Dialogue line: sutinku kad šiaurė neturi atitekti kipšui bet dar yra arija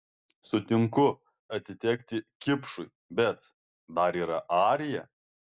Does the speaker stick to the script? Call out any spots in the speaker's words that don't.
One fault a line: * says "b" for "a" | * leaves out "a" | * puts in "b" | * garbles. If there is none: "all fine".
* leaves out "kad šiaurė neturi"